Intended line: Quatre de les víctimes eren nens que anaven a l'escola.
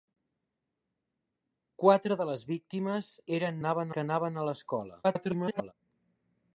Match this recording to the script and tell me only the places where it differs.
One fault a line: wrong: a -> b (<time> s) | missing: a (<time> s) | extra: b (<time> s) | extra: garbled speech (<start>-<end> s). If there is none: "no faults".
wrong: nens -> anaven (3.6 s)
extra: garbled speech (5.0-5.7 s)